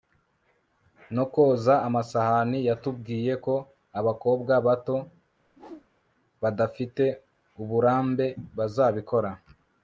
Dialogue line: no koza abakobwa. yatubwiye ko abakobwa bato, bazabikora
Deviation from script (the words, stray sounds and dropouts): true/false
true